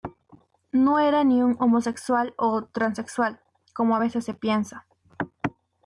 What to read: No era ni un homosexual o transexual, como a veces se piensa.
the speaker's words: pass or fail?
pass